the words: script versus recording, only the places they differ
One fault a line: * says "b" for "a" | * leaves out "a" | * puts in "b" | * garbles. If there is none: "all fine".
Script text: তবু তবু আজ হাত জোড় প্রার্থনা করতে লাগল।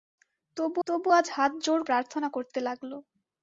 all fine